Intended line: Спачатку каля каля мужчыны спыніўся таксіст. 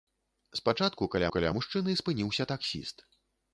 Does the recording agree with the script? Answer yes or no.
yes